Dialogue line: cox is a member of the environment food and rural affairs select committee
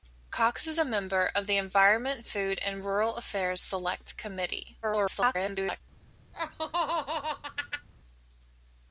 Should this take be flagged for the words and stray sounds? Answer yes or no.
yes